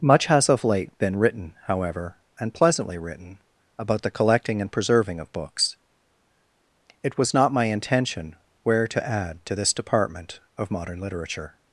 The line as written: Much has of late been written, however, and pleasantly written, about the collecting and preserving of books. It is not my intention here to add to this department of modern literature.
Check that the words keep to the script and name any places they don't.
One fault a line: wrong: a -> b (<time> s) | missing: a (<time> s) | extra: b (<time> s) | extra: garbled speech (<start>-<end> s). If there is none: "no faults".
wrong: is -> was (7.2 s)
wrong: here -> where (8.6 s)